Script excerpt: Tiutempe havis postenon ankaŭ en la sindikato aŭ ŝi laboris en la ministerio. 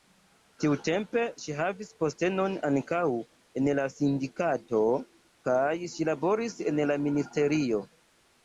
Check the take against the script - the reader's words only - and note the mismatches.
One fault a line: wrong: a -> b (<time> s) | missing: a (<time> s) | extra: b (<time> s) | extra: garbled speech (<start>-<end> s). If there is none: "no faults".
extra: ŝi (1.4 s)
wrong: aŭ -> kaj (5.5 s)